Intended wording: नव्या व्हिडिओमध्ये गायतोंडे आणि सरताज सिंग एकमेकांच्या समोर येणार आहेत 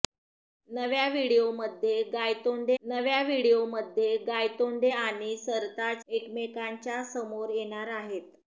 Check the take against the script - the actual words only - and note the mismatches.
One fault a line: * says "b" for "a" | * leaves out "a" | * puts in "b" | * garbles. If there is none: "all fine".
* puts in "नव्या व्हिडिओमध्ये गायतोंडे"
* leaves out "सिंग"